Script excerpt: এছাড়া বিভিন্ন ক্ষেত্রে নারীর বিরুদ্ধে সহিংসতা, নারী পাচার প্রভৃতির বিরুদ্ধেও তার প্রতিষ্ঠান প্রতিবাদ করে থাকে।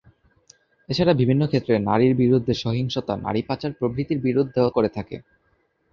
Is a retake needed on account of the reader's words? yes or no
yes